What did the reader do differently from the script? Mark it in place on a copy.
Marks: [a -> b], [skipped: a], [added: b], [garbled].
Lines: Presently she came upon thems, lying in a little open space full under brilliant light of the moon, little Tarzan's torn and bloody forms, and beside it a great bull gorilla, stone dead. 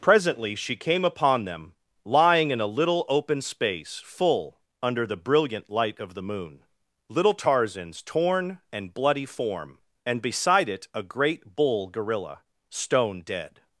Presently she came upon [thems, -> them] lying in a little open space full under [added: the] brilliant light of the moon, little Tarzan's torn and bloody [forms, -> form] and beside it a great bull gorilla, stone dead.